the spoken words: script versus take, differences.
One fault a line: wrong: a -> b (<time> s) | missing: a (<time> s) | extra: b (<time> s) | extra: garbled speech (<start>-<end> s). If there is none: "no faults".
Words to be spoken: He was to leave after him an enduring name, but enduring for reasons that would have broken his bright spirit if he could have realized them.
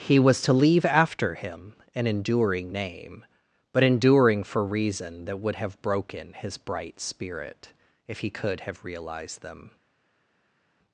wrong: reasons -> reason (4.6 s)